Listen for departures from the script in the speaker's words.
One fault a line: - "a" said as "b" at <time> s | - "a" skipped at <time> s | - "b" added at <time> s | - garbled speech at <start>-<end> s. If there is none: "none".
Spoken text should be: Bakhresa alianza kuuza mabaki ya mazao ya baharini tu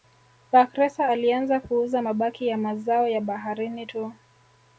none